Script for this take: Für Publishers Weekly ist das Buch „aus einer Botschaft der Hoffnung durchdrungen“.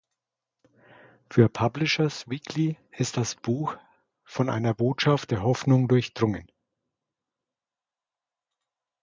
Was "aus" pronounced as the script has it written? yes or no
no